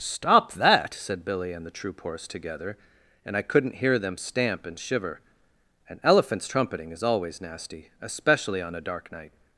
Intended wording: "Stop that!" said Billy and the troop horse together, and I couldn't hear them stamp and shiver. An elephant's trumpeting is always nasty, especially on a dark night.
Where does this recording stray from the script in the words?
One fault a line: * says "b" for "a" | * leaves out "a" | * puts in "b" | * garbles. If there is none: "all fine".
all fine